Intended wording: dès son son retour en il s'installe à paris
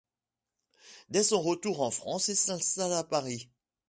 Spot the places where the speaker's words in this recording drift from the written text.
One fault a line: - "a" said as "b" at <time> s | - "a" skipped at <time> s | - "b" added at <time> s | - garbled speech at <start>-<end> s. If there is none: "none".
- "son" skipped at 1.4 s
- "france" added at 1.9 s